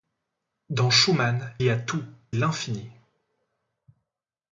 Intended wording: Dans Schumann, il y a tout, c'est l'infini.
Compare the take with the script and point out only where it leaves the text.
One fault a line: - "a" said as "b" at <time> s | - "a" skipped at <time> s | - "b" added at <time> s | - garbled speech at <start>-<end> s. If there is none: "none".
- "il" skipped at 1.5 s
- "c'est" skipped at 2.0 s